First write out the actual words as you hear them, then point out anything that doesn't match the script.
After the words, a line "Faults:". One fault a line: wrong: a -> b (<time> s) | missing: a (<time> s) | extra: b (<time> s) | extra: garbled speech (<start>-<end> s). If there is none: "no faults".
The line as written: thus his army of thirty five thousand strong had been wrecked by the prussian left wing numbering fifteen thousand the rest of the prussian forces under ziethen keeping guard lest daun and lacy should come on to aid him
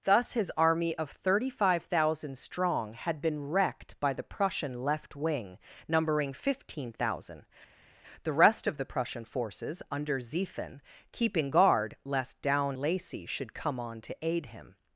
thus his army of thirty five thousand strong had been wrecked by the prussian left wing numbering fifteen thousand the rest of the prussian forces under ziethen keeping guard lest daun lacy should come on to aid him
Faults:
missing: and (12.8 s)